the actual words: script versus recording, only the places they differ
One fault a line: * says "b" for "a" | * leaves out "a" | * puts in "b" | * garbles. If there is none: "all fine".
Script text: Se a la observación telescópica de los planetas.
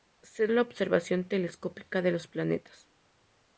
all fine